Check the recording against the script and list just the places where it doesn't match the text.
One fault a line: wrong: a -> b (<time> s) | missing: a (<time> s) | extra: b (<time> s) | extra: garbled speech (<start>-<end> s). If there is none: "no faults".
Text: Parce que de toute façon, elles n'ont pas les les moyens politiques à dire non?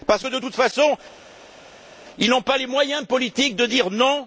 wrong: elles -> ils (2.2 s)
missing: les (2.7 s)
wrong: à -> de (3.6 s)